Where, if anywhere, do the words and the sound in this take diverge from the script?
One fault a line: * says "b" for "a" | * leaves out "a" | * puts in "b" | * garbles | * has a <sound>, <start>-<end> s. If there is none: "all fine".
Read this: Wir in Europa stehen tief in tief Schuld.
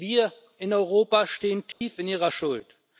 * has a dropout, 1.7-1.8 s
* says "ihrer" for "tief"